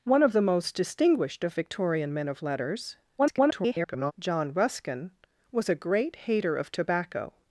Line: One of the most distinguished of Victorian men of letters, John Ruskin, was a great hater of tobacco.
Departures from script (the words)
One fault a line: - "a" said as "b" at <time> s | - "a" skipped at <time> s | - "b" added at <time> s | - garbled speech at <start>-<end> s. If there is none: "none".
- garbled speech at 3.2-4.1 s